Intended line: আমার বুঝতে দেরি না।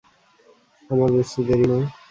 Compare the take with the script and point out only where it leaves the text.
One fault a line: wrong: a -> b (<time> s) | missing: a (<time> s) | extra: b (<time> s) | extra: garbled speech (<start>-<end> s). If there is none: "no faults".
no faults